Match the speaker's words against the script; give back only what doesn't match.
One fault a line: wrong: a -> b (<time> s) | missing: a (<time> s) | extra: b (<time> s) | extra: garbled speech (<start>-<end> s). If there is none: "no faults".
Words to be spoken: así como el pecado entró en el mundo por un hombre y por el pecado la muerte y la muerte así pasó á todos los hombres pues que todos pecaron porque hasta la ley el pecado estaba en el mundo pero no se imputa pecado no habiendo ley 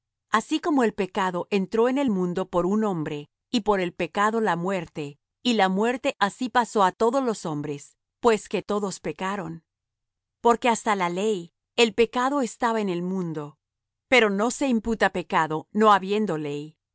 no faults